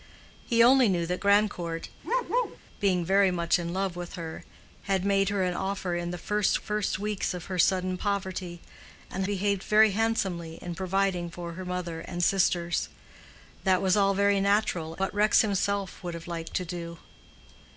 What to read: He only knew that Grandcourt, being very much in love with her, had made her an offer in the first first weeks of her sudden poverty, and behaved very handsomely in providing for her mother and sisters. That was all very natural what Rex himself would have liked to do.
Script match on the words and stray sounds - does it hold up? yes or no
no